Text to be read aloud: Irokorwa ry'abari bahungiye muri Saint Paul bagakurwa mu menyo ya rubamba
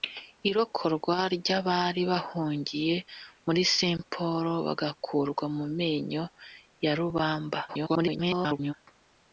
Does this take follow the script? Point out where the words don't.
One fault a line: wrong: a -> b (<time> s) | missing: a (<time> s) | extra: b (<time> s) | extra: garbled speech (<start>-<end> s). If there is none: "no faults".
extra: garbled speech (7.7-8.7 s)